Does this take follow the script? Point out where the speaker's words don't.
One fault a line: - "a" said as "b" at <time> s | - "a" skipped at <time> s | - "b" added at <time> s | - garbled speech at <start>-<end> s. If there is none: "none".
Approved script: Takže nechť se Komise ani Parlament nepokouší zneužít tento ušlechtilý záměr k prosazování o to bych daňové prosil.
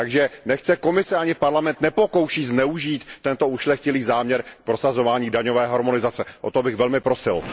- "daňové harmonizace" added at 5.3 s
- "daňové" said as "velmi" at 6.8 s